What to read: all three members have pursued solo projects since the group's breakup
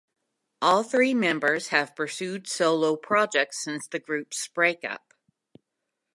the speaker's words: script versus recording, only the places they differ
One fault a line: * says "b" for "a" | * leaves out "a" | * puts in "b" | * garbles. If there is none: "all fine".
all fine